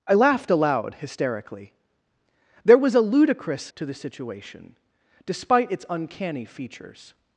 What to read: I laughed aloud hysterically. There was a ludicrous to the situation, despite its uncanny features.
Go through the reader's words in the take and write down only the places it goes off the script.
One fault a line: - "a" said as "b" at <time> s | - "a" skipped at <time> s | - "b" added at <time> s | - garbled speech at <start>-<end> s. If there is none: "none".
none